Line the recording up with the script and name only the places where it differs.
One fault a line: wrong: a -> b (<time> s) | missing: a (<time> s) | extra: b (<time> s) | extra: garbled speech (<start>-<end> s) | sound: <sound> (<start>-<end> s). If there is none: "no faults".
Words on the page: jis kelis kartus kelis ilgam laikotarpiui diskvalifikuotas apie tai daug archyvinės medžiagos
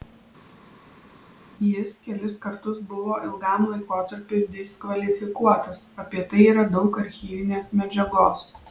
wrong: kelis -> buvo (2.9 s)
extra: yra (6.6 s)